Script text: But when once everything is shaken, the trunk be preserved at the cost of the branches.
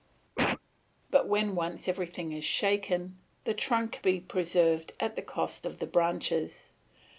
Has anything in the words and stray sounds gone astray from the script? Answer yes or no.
yes